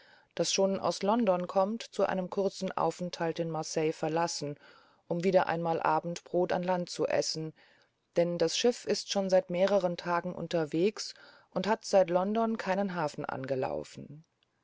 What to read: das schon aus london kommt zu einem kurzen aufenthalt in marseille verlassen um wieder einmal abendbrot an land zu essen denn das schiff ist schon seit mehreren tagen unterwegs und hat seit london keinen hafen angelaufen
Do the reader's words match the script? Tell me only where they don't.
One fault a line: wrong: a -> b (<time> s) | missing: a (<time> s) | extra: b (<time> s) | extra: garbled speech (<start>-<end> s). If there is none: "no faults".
no faults